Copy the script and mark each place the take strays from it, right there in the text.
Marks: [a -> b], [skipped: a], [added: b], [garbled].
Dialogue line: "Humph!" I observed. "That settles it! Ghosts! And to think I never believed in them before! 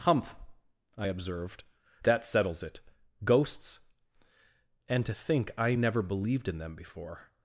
"Humph!" I observed. "That settles it! Ghosts! And to think I never believed in them before!